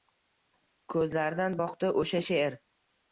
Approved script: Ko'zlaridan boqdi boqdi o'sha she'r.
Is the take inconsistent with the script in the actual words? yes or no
yes